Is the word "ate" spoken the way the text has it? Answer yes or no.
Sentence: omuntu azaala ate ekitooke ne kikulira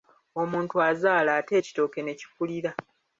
yes